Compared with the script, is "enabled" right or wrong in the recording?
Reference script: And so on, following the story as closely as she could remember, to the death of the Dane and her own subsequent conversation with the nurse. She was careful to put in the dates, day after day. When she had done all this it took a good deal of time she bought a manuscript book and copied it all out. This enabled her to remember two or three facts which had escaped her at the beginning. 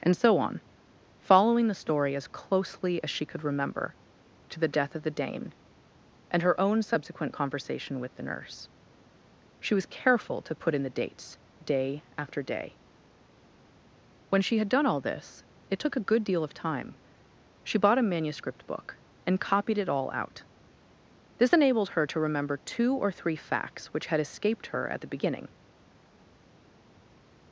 right